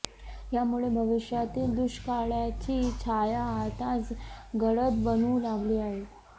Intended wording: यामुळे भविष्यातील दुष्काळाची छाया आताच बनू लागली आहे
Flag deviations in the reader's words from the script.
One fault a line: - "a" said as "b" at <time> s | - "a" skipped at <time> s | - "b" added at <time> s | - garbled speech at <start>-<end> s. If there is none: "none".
- "गडद" added at 4.6 s